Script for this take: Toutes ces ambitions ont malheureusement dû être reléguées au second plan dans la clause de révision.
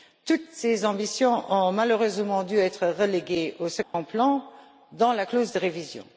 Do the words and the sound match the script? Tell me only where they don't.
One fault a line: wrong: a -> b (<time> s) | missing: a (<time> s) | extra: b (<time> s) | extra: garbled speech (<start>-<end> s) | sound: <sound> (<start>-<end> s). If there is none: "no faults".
sound: dropout (3.8-3.9 s)